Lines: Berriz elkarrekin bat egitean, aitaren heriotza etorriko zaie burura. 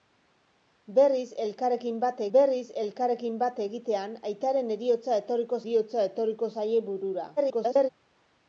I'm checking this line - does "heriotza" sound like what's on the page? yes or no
yes